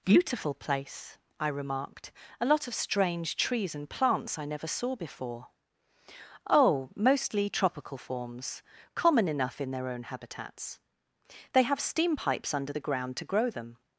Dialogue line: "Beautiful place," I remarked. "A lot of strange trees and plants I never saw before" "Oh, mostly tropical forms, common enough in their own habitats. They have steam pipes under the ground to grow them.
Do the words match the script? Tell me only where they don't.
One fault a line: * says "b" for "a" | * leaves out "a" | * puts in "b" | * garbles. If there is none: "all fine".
all fine